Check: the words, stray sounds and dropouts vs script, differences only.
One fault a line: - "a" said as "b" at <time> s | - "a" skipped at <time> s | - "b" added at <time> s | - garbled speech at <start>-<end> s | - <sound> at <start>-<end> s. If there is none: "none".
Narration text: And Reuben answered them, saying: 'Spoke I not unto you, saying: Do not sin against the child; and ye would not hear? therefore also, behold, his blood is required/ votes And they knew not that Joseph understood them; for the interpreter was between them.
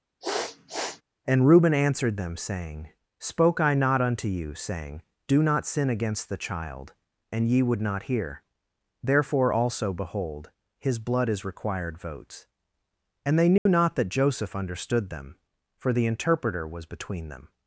- sniff at 0.2-1.0 s
- dropout at 13.6-13.7 s